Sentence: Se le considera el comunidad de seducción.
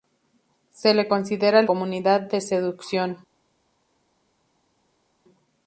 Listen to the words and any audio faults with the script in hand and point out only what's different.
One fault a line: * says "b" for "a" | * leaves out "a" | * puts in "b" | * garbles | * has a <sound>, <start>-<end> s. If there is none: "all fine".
all fine